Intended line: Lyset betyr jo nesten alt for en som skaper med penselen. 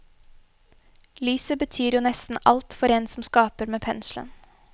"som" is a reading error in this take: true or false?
false